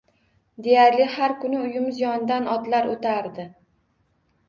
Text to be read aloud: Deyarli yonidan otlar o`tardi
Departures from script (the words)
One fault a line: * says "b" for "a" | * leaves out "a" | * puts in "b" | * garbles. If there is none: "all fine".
* puts in "har kuni uyimiz"